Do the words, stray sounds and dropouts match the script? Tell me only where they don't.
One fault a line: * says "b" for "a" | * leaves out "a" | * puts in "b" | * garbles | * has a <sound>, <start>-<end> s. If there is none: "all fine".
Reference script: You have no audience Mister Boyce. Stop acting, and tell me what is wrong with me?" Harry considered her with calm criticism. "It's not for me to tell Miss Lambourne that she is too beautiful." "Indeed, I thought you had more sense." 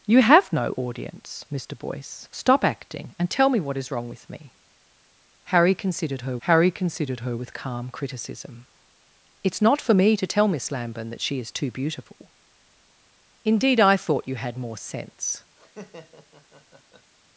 * puts in "harry considered her"
* has a laugh, 15.6-17.1 s